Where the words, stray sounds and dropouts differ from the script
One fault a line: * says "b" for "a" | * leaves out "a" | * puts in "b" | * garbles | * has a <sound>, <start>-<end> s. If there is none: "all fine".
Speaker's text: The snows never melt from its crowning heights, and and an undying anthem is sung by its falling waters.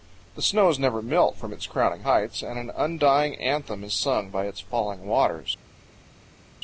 * leaves out "and"